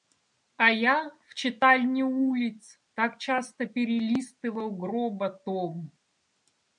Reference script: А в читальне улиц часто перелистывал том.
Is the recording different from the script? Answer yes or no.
yes